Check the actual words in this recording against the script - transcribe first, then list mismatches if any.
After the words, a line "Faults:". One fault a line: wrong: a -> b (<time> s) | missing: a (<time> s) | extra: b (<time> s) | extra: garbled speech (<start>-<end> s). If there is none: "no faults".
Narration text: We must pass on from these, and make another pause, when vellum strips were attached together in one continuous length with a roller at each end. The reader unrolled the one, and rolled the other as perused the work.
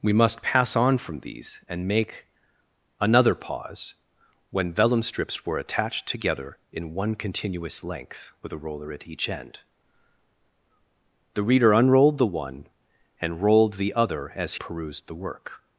We must pass on from these, and make another pause, when vellum strips were attached together in one continuous length with a roller at each end. The reader unrolled the one, and rolled the other as perused the work.
Faults:
no faults